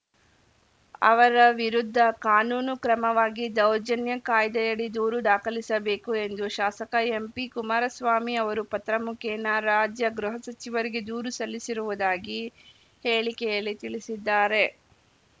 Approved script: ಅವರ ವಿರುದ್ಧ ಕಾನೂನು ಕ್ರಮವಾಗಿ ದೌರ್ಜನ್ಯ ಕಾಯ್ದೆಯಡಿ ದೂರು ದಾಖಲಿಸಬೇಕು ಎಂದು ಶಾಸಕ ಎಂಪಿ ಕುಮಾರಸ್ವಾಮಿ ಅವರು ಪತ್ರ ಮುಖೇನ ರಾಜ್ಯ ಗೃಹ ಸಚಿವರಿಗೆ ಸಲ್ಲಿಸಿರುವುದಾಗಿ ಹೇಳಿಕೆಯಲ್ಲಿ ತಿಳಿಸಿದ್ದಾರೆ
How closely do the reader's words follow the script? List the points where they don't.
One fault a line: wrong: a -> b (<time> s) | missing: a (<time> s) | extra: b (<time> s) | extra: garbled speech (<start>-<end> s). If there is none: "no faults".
extra: ದೂರು (11.1 s)